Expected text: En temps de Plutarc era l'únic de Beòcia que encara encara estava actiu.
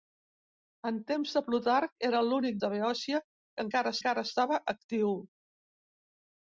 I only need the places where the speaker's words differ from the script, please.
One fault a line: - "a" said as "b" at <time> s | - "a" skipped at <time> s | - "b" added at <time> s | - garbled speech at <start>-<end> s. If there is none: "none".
none